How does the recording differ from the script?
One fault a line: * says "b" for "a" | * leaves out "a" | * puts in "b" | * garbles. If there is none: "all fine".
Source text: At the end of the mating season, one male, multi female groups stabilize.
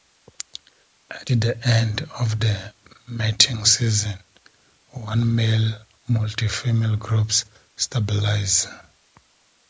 all fine